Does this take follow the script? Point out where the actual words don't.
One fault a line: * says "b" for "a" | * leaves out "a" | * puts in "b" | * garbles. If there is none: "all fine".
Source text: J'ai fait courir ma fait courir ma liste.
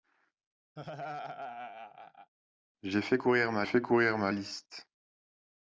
all fine